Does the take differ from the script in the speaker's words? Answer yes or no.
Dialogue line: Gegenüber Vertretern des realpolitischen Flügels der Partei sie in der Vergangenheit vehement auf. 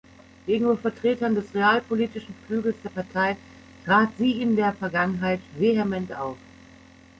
yes